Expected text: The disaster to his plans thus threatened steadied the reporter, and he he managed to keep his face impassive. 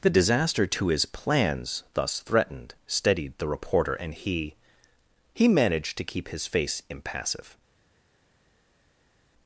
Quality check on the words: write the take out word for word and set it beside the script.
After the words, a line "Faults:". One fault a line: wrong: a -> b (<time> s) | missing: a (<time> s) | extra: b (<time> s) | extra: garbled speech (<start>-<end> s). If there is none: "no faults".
The disaster to his plans thus threatened steadied the reporter, and he he managed to keep his face impassive.
Faults:
no faults